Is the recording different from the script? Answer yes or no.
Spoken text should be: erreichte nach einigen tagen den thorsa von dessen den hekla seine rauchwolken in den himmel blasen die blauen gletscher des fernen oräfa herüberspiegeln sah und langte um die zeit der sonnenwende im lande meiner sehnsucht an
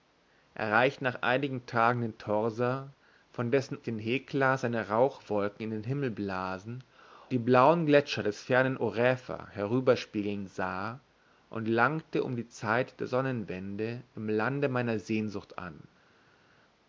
no